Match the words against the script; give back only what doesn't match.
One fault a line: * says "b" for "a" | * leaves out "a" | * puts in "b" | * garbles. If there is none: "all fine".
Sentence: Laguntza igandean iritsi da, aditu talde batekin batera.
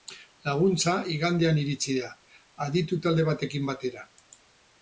all fine